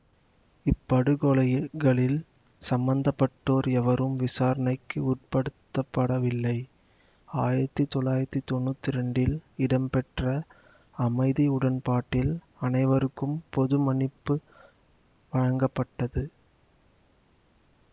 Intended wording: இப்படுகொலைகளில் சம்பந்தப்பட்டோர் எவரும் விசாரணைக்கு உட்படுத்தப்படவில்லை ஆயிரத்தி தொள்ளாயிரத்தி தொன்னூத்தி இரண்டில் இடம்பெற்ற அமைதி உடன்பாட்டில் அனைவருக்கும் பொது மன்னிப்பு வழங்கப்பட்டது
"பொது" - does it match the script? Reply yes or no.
yes